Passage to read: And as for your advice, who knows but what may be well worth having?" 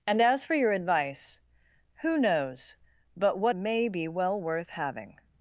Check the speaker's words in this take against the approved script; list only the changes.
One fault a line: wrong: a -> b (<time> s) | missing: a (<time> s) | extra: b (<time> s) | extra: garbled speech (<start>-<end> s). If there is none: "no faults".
no faults